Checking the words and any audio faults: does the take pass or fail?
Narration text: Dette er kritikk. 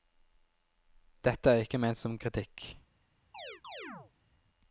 fail